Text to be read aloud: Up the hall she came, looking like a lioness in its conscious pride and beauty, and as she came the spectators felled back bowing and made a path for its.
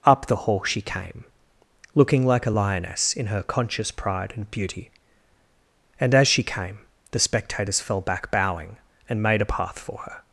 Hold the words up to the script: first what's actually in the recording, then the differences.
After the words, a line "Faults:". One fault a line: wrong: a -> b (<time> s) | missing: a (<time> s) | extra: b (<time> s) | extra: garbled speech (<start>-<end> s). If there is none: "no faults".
Up the hall she came, looking like a lioness in her conscious pride and beauty, and as she came the spectators fell back bowing and made a path for her.
Faults:
wrong: its -> her (3.3 s)
wrong: felled -> fell (7.8 s)
wrong: its -> her (10.0 s)